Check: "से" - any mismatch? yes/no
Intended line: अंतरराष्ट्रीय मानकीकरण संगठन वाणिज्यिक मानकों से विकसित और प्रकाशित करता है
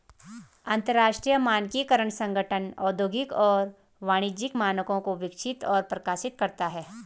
yes